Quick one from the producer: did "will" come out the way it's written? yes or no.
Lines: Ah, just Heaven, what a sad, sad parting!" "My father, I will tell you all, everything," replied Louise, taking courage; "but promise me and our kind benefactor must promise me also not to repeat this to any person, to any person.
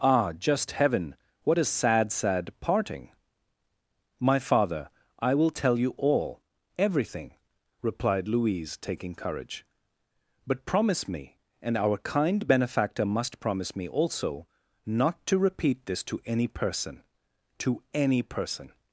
yes